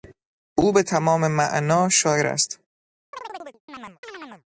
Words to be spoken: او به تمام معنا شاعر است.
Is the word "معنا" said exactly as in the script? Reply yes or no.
yes